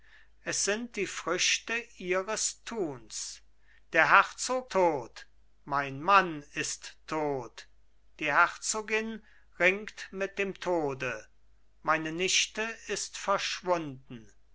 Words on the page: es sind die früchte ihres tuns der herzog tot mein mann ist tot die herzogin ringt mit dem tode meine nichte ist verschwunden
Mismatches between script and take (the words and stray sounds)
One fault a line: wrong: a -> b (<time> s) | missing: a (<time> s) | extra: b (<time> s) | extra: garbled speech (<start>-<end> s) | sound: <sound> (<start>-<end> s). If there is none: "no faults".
no faults